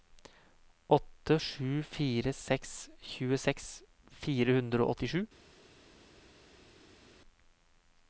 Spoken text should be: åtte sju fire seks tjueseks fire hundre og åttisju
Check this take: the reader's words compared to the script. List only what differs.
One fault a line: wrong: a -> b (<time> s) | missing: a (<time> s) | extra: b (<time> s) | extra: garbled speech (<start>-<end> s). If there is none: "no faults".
no faults